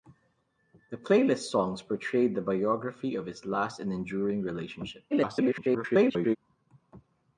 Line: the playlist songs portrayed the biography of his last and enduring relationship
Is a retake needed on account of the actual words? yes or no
yes